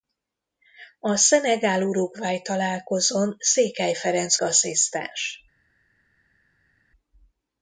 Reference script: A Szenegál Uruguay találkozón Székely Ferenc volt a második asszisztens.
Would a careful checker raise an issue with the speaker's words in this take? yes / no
yes